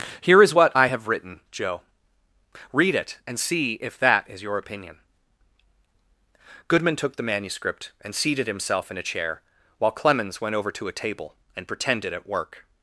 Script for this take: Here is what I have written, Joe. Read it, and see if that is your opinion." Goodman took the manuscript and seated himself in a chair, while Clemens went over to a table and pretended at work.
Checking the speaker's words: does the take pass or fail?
pass